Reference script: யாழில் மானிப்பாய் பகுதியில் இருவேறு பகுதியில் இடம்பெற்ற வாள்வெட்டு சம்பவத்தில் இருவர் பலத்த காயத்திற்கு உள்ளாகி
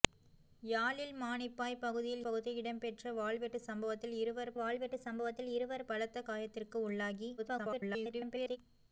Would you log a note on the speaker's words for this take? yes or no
yes